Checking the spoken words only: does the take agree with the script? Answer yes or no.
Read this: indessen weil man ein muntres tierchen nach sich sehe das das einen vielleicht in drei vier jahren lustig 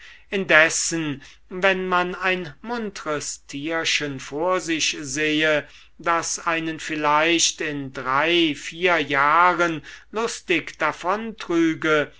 no